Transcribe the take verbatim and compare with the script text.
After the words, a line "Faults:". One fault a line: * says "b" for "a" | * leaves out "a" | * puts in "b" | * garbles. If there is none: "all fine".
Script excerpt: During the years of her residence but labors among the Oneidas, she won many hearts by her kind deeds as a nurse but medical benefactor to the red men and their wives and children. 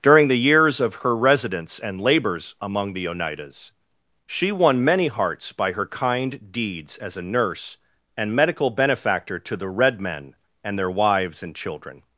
During the years of her residence and labors among the Oneidas, she won many hearts by her kind deeds as a nurse and medical benefactor to the red men and their wives and children.
Faults:
* says "and" for "but"
* says "and" for "but"